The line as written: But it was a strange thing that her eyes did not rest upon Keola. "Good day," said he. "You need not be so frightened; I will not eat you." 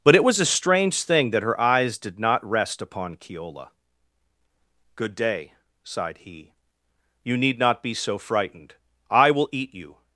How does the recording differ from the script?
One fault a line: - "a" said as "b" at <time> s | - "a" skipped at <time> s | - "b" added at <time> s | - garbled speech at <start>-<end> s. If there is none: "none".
- "said" said as "sighed" at 5.8 s
- "not" skipped at 9.5 s